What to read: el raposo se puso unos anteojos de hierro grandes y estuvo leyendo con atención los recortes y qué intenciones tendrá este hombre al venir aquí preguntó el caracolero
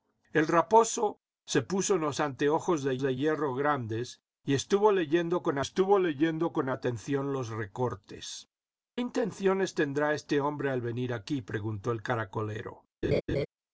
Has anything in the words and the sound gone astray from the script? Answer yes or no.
yes